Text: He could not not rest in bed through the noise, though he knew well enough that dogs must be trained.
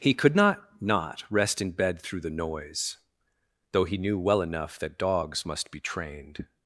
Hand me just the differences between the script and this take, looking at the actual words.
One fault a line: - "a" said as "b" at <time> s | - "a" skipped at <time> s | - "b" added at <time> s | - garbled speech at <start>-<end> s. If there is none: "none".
none